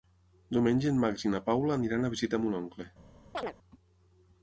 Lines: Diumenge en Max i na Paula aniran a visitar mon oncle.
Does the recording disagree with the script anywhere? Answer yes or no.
no